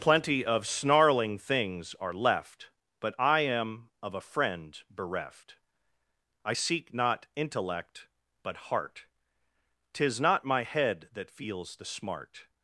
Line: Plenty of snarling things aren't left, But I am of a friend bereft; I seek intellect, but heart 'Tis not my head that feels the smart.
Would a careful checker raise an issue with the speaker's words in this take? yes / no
yes